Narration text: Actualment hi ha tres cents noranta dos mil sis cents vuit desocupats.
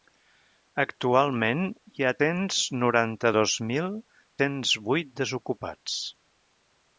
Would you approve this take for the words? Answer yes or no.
no